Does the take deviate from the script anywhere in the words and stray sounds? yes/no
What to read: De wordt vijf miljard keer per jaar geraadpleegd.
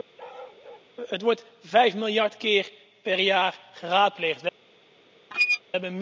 yes